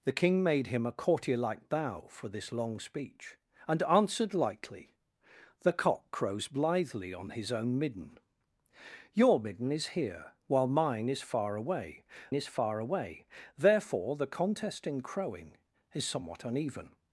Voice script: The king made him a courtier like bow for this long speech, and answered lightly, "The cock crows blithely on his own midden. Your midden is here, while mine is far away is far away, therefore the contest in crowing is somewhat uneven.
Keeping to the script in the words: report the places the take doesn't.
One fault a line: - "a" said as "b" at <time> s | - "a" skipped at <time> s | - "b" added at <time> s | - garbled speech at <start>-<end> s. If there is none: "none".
none